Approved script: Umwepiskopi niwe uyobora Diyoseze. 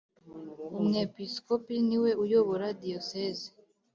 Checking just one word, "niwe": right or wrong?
right